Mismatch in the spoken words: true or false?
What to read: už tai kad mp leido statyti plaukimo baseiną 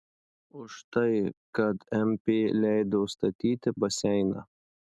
true